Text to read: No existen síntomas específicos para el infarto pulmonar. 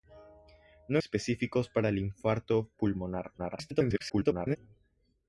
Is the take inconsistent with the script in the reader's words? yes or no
yes